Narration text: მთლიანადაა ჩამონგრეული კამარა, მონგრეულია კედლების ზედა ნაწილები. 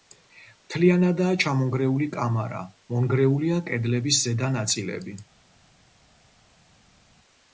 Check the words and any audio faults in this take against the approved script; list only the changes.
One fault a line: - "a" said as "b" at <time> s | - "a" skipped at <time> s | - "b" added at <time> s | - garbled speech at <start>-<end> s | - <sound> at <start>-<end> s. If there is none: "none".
none